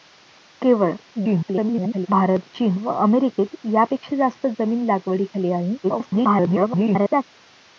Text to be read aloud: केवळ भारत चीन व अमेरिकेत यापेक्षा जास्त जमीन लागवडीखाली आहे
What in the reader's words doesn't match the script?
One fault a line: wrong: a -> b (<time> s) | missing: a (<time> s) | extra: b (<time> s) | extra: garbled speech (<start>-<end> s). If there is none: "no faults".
extra: garbled speech (1.2-2.1 s)
extra: garbled speech (5.8-7.2 s)